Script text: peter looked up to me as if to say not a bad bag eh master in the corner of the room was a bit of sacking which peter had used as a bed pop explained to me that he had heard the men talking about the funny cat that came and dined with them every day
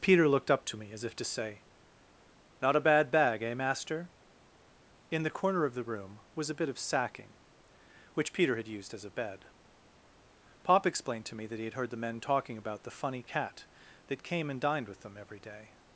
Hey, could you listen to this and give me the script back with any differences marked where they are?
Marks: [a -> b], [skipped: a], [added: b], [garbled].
peter looked up to me as if to say not a bad bag eh master in the corner of the room was a bit of sacking which peter had used as a bed pop explained to me that he had heard the men talking about the funny cat that came and dined with them every day